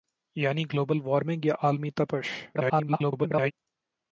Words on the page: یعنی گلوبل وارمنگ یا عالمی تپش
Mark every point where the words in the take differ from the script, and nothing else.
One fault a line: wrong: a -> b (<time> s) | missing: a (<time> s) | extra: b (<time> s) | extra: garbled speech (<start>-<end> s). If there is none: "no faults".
extra: garbled speech (2.5-3.5 s)